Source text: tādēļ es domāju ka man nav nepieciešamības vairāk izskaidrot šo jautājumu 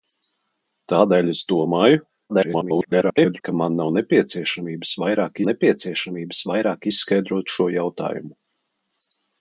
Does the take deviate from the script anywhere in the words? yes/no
yes